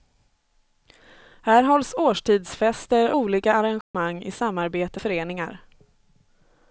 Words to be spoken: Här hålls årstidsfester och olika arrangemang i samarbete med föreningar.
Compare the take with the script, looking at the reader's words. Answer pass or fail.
fail